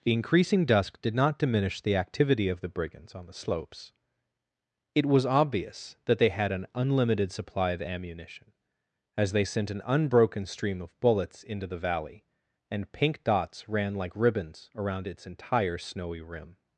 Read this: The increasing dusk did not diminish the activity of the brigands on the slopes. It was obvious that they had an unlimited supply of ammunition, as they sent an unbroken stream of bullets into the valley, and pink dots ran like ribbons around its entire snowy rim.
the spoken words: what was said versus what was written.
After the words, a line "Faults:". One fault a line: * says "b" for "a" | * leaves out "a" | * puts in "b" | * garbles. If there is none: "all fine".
The increasing dusk did not diminish the activity of the brigands on the slopes. It was obvious that they had an unlimited supply of ammunition, as they sent an unbroken stream of bullets into the valley, and pink dots ran like ribbons around its entire snowy rim.
Faults:
all fine